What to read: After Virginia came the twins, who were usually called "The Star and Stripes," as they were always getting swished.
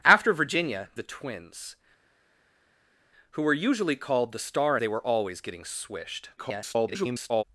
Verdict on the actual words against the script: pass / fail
fail